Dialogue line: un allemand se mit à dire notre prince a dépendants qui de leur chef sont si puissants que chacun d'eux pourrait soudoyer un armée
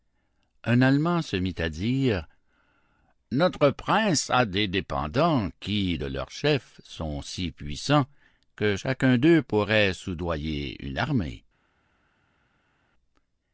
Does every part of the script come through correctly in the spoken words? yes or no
no